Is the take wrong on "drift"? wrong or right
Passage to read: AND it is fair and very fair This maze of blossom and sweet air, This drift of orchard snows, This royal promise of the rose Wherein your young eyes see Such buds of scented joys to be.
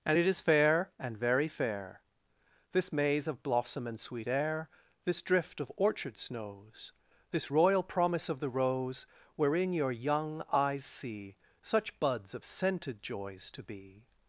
right